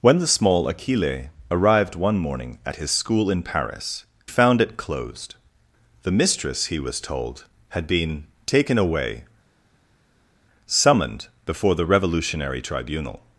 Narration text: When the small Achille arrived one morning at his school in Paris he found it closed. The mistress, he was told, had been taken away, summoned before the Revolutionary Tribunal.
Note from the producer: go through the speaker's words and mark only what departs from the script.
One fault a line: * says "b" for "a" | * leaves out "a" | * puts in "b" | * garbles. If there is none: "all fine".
* leaves out "he"